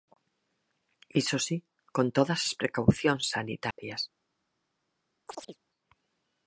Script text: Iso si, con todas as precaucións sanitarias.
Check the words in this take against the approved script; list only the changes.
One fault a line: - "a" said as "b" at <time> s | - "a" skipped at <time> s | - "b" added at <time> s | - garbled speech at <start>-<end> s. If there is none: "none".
none